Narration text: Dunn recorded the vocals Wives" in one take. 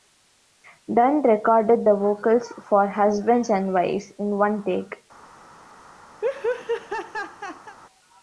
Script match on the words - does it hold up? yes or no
no